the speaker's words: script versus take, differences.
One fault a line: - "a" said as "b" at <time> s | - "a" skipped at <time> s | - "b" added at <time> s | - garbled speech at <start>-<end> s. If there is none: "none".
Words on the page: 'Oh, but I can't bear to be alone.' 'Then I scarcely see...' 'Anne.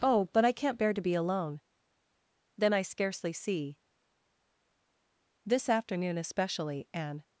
- "This afternoon especially" added at 5.5 s